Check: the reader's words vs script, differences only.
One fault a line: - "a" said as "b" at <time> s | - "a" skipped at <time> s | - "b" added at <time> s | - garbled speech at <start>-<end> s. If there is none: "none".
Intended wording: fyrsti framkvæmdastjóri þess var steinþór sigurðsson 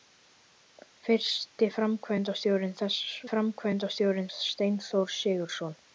- "var" said as "framkvæmdastjóri" at 3.3 s